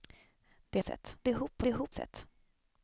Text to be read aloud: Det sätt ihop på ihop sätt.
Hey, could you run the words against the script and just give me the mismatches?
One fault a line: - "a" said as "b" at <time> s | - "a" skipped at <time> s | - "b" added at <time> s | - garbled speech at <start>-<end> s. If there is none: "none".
none